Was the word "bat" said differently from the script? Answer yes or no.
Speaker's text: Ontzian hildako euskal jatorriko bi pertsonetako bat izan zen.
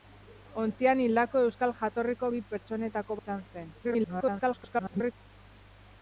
yes